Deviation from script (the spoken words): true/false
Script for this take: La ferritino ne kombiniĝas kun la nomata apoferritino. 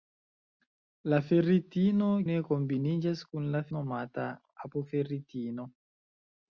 false